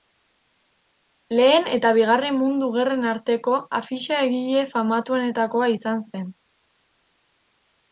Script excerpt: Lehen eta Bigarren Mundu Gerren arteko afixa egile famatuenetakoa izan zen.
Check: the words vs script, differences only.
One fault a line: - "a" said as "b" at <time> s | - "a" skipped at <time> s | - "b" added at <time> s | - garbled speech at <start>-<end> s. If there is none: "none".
none